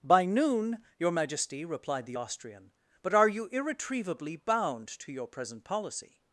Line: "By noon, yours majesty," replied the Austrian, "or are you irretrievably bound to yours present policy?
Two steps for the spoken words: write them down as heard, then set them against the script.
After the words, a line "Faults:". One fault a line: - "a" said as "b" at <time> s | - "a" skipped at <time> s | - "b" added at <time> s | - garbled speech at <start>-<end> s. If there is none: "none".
"By noon, your majesty," replied the Austrian, "but are you irretrievably bound to your present policy?
Faults:
- "yours" said as "your" at 1.0 s
- "or" said as "but" at 3.0 s
- "yours" said as "your" at 5.1 s